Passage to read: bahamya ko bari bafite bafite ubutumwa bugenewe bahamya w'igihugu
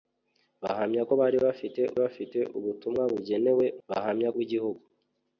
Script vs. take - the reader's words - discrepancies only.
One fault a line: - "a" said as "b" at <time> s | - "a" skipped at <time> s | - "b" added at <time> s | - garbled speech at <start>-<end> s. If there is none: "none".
none